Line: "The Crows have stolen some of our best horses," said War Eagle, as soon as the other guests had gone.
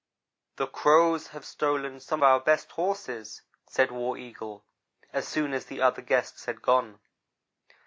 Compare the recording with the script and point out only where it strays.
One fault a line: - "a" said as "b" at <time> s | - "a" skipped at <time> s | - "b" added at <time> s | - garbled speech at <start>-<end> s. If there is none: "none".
- "of" skipped at 2.2 s